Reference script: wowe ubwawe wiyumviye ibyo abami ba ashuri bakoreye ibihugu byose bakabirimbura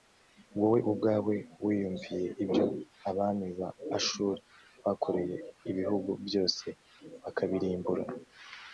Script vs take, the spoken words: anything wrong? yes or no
no